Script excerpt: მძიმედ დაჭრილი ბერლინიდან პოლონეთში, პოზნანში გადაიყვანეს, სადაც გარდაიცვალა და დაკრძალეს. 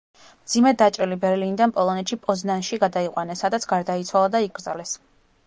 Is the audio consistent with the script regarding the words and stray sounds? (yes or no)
yes